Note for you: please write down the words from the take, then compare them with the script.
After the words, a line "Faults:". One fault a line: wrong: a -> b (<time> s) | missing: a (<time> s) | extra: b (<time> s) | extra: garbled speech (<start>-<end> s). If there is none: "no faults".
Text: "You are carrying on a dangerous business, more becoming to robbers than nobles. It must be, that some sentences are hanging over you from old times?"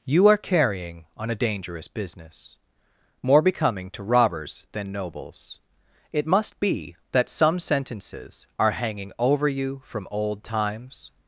"You are carrying on a dangerous business, more becoming to robbers than nobles. It must be, that some sentences are hanging over you from old times?"
Faults:
no faults